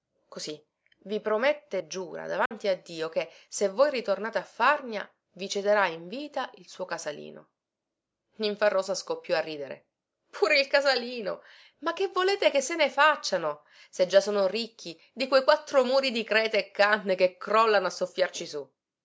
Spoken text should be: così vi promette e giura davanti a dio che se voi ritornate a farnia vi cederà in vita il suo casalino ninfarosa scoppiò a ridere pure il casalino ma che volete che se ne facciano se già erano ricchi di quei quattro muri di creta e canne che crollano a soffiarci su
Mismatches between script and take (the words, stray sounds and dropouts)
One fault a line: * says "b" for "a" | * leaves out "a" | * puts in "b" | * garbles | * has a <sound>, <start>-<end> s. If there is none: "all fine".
* has a dropout, 2.5-2.5 s
* says "sono" for "erano"